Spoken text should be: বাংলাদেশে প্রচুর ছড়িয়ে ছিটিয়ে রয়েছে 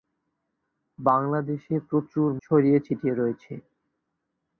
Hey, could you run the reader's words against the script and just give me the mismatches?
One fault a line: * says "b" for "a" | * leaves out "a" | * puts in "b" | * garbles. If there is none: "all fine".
all fine